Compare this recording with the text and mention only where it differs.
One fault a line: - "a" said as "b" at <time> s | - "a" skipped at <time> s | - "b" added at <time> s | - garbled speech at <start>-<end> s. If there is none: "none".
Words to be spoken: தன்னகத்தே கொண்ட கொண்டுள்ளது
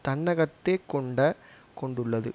none